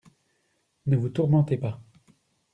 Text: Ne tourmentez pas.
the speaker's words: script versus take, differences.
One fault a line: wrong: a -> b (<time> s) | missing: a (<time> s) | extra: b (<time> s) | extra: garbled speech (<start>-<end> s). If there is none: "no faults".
extra: vous (1.0 s)